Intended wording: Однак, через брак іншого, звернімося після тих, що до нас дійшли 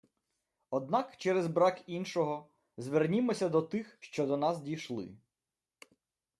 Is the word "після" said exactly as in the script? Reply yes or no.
no